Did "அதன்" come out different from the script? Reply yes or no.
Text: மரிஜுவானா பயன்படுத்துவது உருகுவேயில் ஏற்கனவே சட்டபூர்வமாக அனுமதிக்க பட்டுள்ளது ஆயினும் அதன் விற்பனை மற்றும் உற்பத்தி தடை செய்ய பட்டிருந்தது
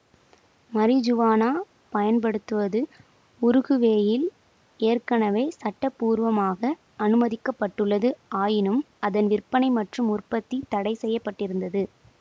no